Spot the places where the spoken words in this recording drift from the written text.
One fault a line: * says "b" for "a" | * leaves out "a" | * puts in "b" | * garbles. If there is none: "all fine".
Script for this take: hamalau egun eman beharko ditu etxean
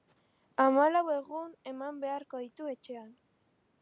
all fine